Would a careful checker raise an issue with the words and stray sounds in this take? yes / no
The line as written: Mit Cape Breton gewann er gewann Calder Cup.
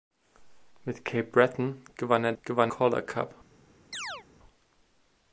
yes